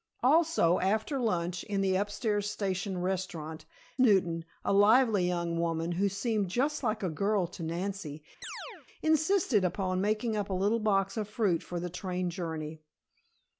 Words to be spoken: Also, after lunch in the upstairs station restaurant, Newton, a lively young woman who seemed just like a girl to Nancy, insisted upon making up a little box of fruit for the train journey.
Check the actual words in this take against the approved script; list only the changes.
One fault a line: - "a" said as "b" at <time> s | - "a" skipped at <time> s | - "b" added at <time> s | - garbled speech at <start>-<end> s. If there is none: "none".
none